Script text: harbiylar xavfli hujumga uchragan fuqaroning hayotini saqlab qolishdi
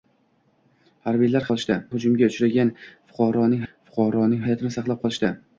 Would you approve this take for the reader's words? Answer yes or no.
no